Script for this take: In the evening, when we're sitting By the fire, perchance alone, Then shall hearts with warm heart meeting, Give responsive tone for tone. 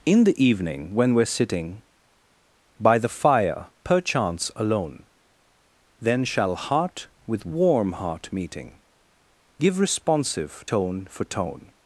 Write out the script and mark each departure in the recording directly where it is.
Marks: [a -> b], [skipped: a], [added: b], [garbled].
In the evening, when we're sitting By the fire, perchance alone, Then shall [hearts -> heart] with warm heart meeting, Give responsive tone for tone.